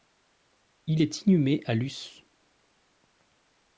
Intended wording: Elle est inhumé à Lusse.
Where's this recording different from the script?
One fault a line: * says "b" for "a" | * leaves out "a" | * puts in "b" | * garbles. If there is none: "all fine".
* says "Il" for "Elle"